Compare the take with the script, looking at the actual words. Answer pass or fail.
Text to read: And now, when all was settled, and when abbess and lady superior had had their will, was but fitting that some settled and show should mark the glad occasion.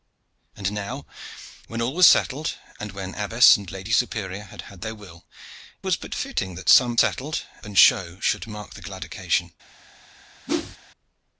pass